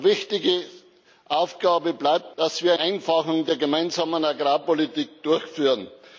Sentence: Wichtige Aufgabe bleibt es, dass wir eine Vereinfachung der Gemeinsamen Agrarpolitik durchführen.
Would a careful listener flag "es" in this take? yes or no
yes